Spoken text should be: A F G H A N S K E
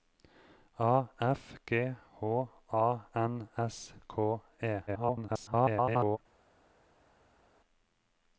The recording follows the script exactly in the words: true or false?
false